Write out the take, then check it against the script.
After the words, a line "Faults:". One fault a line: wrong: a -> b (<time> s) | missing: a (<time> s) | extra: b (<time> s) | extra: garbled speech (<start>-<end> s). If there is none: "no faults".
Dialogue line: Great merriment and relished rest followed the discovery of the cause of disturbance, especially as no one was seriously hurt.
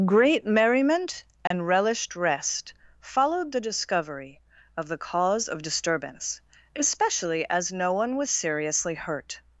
Great merriment and relished rest followed the discovery of the cause of disturbance, especially as no one was seriously hurt.
Faults:
no faults